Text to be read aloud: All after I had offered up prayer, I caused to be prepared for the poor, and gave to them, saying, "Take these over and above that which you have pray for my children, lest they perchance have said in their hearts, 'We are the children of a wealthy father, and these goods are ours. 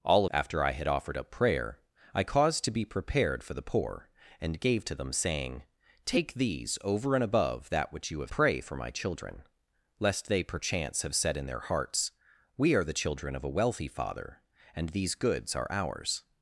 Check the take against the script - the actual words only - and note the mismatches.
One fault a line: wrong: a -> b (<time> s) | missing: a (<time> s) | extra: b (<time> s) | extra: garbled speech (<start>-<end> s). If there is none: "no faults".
no faults